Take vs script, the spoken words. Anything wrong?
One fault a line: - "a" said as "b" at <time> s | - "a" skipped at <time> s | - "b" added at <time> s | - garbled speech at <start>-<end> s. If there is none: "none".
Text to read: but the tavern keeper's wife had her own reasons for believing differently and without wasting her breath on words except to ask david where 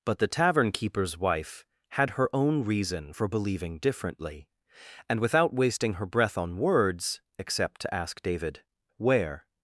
- "reasons" said as "reason" at 2.6 s